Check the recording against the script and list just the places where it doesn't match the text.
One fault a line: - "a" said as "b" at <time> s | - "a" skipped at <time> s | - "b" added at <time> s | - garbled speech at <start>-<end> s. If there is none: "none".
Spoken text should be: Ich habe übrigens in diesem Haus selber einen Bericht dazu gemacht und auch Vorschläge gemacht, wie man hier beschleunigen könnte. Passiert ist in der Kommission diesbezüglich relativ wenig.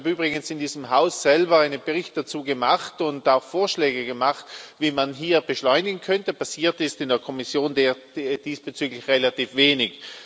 none